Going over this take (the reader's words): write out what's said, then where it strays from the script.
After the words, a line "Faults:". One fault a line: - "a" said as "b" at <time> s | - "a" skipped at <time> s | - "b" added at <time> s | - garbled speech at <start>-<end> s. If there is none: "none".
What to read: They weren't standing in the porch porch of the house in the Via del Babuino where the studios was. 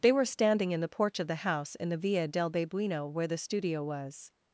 They were standing in the porch of the house in the Via del Babuino where the studio was.
Faults:
- "weren't" said as "were" at 0.1 s
- "porch" skipped at 1.2 s
- "studios" said as "studio" at 3.4 s